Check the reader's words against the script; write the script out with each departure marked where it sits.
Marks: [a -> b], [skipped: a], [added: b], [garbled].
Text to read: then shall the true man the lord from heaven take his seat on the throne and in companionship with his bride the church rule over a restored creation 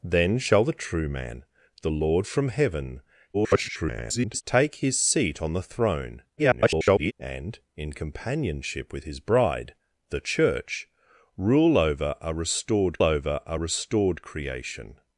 then shall the true man the lord from heaven [garbled] take his seat on the throne [garbled] and in companionship with his bride the church rule over a restored [added: over a restored] creation